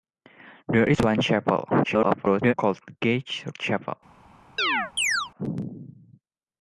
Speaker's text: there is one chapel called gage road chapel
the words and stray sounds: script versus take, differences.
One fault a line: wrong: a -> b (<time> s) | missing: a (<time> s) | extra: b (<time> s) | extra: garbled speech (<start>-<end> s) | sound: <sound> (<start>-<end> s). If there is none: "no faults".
extra: garbled speech (1.8-2.5 s)
missing: road (3.4 s)
sound: chirp (4.6-5.3 s)